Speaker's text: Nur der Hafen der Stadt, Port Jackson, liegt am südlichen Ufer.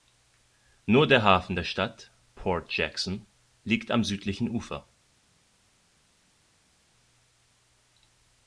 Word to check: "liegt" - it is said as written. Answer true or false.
true